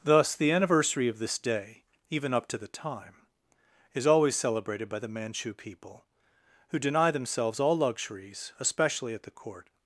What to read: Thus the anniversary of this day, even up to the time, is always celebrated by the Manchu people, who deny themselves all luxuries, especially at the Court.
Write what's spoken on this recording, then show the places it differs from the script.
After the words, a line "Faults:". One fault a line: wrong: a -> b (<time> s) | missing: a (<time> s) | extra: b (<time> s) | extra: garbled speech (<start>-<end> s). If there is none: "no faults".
Thus the anniversary of this day, even up to the time, is always celebrated by the Manchu people, who deny themselves all luxuries, especially at the Court.
Faults:
no faults